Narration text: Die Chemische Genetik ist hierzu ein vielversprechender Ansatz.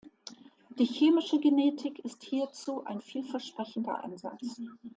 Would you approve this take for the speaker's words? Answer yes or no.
yes